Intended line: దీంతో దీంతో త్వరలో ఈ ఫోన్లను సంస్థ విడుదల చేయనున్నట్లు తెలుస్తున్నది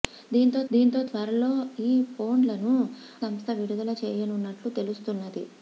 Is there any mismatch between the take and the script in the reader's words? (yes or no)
no